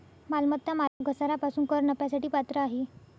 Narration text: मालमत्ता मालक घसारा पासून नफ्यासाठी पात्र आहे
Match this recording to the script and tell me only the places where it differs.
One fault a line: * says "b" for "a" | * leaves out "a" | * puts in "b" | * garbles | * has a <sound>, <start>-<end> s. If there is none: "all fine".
* has a dropout, 0.9-1.0 s
* puts in "कर"